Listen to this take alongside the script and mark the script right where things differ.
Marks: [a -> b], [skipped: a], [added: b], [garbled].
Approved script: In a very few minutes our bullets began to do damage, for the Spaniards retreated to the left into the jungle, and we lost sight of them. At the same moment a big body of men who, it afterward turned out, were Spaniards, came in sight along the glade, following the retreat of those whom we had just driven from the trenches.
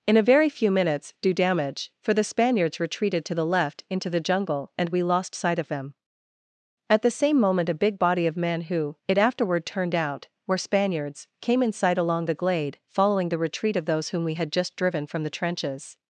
In a very few minutes [skipped: our bullets began to] do damage, for the Spaniards retreated to the left into the jungle, and we lost sight of them. At the same moment a big body of men who, it afterward turned out, were Spaniards, came in sight along the glade, following the retreat of those whom we had just driven from the trenches.